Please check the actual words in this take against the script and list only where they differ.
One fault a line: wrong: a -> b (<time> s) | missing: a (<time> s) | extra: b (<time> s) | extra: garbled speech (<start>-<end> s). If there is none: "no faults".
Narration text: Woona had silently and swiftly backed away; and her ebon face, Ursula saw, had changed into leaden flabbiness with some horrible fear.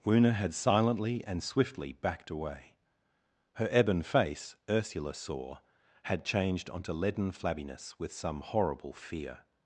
missing: and (2.8 s)
wrong: into -> onto (6.7 s)